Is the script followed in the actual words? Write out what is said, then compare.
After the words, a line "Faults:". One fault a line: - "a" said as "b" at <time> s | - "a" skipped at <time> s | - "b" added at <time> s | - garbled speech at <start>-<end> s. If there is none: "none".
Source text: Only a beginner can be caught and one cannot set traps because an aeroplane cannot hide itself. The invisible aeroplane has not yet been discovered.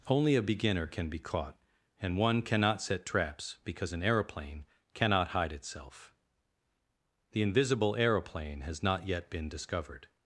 Only a beginner can be caught and one cannot set traps because an aeroplane cannot hide itself. The invisible aeroplane has not yet been discovered.
Faults:
none